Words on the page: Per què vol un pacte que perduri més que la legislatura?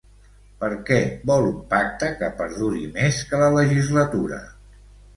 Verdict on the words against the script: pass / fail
pass